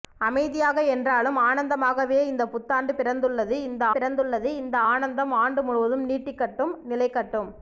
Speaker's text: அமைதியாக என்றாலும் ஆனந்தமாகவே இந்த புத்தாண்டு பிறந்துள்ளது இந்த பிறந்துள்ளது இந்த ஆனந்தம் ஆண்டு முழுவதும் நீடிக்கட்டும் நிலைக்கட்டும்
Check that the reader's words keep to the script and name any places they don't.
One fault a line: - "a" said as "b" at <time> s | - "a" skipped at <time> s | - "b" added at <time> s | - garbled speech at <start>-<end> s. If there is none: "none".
none